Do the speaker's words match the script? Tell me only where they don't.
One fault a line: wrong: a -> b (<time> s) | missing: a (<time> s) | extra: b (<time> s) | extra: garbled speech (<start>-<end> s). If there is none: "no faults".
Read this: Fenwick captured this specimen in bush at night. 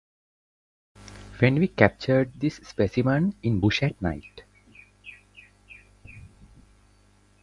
no faults